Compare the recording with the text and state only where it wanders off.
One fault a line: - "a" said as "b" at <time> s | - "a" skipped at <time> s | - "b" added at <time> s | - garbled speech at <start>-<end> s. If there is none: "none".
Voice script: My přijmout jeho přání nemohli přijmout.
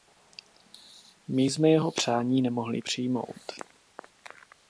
- "přijmout" said as "jsme" at 1.4 s